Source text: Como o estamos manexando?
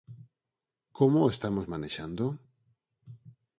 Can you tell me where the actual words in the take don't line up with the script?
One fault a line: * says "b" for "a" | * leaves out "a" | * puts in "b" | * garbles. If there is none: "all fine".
all fine